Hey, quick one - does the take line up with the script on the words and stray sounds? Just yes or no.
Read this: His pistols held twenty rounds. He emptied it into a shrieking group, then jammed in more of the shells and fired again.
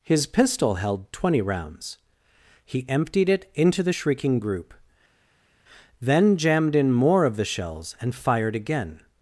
no